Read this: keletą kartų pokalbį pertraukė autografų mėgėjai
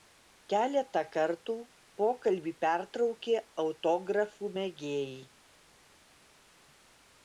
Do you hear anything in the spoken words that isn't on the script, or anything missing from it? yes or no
no